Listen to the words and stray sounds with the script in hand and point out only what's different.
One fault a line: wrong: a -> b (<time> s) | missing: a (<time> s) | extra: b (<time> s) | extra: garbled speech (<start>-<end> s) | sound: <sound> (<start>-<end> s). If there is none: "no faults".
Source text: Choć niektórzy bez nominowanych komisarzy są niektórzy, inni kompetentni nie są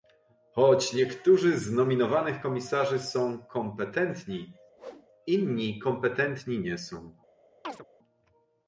wrong: bez -> z (1.6 s)
wrong: niektórzy -> kompetentni (3.4 s)
sound: whoosh (4.8-5.1 s)
sound: chirp (7.6-7.9 s)